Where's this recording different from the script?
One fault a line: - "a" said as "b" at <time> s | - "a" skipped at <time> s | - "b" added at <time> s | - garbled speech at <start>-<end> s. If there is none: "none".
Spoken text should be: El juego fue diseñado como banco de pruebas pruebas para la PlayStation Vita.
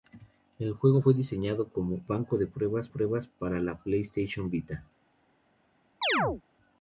none